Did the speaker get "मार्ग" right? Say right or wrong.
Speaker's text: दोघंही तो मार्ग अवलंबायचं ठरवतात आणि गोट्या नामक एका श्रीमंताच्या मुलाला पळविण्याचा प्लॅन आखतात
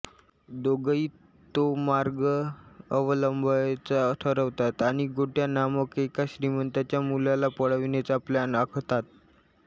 right